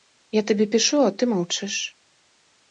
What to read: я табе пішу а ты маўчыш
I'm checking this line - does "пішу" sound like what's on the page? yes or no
yes